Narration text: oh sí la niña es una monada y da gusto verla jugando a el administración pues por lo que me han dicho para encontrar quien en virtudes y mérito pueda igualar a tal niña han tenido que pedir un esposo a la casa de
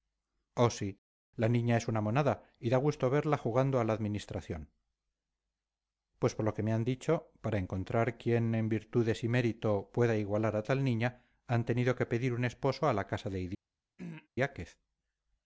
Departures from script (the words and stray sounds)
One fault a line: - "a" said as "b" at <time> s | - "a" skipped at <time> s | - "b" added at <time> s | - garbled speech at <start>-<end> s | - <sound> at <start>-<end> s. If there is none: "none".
- "el" said as "la" at 3.8 s
- throat clearing at 14.0-14.3 s